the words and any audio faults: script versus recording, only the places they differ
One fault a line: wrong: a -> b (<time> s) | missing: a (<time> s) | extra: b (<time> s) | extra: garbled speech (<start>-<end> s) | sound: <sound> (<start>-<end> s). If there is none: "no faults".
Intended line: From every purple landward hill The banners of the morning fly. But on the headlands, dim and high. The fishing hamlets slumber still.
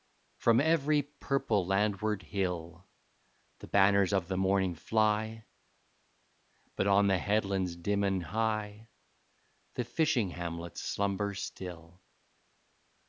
no faults